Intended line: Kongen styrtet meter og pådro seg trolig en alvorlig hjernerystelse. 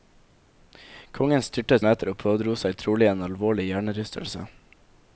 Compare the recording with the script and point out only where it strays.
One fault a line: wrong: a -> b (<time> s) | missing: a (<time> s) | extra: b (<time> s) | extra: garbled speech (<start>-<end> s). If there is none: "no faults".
no faults